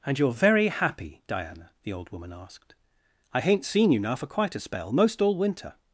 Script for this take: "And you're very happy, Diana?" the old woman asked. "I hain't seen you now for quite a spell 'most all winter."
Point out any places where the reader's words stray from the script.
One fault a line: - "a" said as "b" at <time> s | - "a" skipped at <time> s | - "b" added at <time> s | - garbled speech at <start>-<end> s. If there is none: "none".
none